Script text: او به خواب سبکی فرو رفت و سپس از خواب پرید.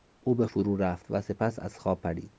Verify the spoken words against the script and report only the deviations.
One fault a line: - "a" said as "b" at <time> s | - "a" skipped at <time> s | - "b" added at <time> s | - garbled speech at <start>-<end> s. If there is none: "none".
- "خواب سبکی" skipped at 0.5 s